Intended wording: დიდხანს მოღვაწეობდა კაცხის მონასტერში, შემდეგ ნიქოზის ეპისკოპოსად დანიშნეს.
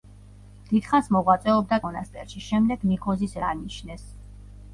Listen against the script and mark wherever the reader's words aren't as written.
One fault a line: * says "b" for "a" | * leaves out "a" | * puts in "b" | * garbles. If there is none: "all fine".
* leaves out "კაცხის"
* leaves out "ეპისკოპოსად"